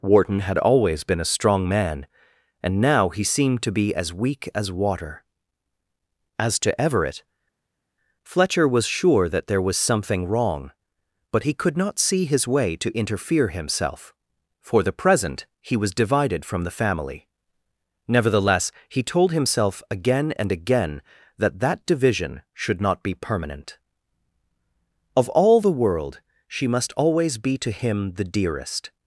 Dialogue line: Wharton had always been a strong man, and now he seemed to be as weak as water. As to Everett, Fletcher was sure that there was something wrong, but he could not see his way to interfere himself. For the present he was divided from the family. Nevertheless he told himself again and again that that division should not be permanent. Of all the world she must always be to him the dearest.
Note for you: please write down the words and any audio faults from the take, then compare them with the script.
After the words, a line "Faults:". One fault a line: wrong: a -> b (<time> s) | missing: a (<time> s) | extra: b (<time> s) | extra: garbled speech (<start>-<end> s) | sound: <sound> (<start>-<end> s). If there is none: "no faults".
Wharton had always been a strong man, and now he seemed to be as weak as water. As to Everett, Fletcher was sure that there was something wrong, but he could not see his way to interfere himself. For the present he was divided from the family. Nevertheless he told himself again and again that that division should not be permanent. Of all the world she must always be to him the dearest.
Faults:
no faults